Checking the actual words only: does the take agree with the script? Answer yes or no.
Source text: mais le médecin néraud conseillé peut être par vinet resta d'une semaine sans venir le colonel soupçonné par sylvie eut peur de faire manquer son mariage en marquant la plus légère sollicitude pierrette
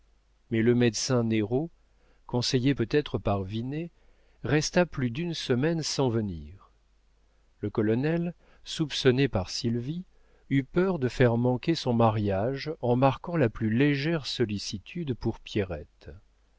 no